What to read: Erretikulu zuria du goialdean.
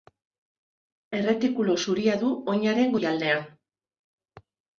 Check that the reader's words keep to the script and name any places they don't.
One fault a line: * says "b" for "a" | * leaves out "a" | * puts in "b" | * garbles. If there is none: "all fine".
* puts in "oinaren"